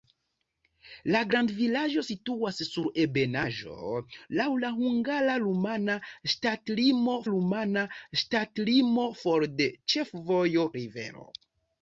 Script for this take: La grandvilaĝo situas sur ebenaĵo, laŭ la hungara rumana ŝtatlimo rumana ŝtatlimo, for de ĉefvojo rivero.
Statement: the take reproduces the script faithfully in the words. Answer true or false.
true